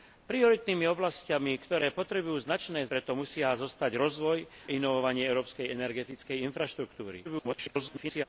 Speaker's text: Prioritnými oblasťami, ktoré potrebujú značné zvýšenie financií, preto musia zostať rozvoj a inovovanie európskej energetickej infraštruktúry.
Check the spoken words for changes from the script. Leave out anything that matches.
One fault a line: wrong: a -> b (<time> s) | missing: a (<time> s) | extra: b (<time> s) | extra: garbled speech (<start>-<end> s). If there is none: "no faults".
missing: zvýšenie financií (2.9 s)
missing: a (4.5 s)
extra: garbled speech (7.2-8.2 s)